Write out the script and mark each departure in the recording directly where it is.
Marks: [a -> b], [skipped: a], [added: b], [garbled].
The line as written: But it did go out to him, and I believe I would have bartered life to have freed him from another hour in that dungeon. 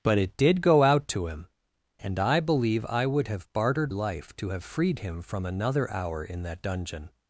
But it did go out to him, and I believe I would have bartered life to have freed him from another hour in that dungeon.